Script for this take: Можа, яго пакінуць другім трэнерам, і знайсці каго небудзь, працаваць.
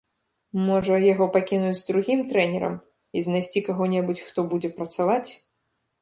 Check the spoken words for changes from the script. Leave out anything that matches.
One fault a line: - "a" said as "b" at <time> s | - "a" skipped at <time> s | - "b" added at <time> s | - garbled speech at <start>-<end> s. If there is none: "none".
- "хто будзе" added at 4.3 s